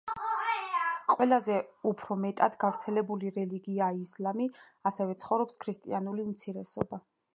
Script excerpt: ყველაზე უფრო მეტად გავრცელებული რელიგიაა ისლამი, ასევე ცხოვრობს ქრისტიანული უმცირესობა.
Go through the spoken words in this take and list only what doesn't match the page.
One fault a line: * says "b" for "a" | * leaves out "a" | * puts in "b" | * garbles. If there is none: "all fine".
all fine